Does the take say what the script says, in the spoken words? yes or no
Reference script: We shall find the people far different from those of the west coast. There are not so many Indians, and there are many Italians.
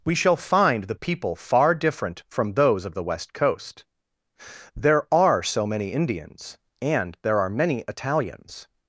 no